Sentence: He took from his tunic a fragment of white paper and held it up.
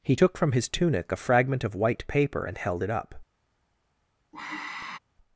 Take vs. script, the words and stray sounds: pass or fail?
fail